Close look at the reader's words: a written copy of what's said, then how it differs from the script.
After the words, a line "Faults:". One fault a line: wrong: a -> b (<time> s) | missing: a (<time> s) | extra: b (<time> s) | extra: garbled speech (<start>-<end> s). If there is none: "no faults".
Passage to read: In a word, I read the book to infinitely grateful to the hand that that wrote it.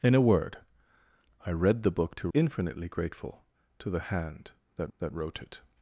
In a word, I read the book to infinitely grateful to the hand that that wrote it.
Faults:
no faults